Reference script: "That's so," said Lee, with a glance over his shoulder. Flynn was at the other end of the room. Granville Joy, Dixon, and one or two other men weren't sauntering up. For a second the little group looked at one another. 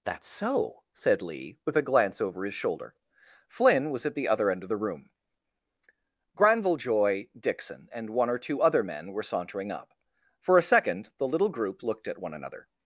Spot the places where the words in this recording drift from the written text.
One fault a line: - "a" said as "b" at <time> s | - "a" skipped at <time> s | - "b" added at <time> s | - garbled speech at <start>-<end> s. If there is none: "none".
- "weren't" said as "were" at 9.1 s